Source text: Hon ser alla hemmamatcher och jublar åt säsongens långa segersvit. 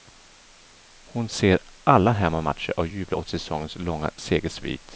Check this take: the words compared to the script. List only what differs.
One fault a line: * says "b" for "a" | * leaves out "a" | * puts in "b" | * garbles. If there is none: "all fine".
all fine